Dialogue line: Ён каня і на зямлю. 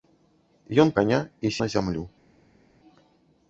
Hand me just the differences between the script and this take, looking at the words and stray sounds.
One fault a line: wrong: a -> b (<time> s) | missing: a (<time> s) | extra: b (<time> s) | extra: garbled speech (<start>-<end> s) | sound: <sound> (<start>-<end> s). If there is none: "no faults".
no faults